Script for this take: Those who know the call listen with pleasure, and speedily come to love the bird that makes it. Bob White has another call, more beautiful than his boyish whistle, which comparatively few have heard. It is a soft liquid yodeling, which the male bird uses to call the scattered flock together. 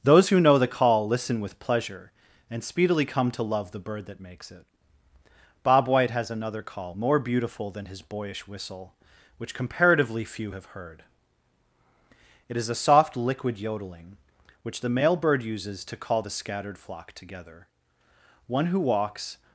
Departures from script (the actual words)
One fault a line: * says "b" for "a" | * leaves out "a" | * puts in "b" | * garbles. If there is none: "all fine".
* puts in "One who walks"